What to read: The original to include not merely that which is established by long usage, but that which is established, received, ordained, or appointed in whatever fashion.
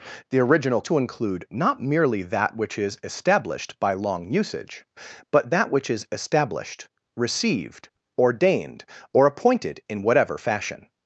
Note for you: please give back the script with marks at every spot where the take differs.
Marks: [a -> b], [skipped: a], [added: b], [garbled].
The original to include not merely that which is established by long usage, but that which is established, received, ordained, or appointed in whatever fashion.